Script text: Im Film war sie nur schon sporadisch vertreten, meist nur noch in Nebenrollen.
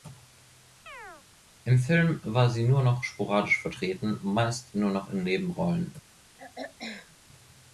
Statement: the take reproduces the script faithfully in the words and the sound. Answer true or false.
false